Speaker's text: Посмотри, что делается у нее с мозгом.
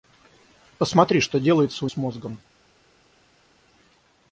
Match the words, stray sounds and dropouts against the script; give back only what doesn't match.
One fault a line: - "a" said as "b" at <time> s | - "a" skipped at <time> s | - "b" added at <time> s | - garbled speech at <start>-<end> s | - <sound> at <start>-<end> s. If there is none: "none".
- "нее" skipped at 1.9 s